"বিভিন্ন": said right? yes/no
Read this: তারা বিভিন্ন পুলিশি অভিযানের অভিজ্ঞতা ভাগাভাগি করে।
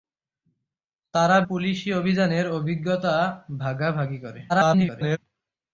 no